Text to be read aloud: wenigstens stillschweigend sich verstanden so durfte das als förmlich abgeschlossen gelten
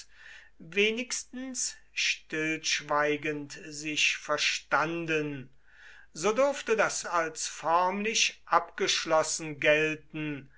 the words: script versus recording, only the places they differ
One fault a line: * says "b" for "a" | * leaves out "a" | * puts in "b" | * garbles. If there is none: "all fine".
all fine